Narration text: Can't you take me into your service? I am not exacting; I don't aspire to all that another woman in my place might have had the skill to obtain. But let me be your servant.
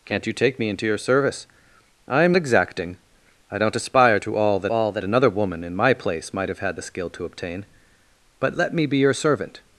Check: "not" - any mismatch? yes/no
yes